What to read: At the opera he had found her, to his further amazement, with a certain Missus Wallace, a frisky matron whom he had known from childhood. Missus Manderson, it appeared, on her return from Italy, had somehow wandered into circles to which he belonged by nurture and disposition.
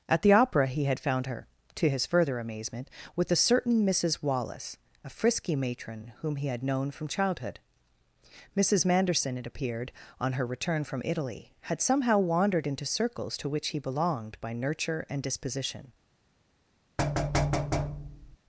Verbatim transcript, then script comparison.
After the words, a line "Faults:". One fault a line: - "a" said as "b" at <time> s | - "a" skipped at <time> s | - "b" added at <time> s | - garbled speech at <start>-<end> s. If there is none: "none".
At the opera he had found her, to his further amazement, with a certain Missus Wallace, a frisky matron whom he had known from childhood. Missus Manderson, it appeared, on her return from Italy, had somehow wandered into circles to which he belonged by nurture and disposition.
Faults:
none